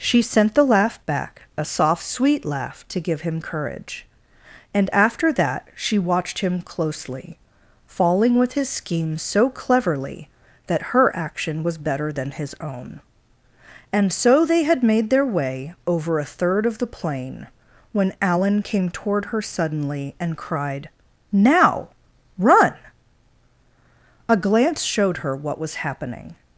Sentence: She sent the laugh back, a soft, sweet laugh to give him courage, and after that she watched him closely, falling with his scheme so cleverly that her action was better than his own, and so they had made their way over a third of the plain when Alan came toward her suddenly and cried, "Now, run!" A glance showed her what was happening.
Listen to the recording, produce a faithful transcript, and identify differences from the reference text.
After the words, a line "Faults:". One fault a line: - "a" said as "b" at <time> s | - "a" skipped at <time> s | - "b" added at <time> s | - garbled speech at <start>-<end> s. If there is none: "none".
She sent the laugh back, a soft, sweet laugh to give him courage, and after that she watched him closely, falling with his scheme so cleverly that her action was better than his own, and so they had made their way over a third of the plain when Alan came toward her suddenly and cried, "Now, run!" A glance showed her what was happening.
Faults:
none